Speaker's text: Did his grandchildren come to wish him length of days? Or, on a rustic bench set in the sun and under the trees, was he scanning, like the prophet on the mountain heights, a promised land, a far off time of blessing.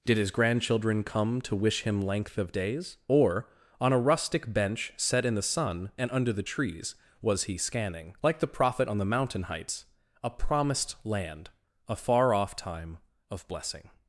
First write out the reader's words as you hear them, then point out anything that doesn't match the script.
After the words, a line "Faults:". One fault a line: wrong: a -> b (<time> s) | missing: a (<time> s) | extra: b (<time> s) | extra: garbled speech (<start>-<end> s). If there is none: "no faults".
Did his grandchildren come to wish him length of days? Or, on a rustic bench set in the sun and under the trees, was he scanning, like the prophet on the mountain heights, a promised land, a far off time of blessing.
Faults:
no faults